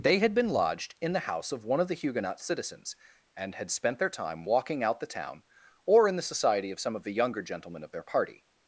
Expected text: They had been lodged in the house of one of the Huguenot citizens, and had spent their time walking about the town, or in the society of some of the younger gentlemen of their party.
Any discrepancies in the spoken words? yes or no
yes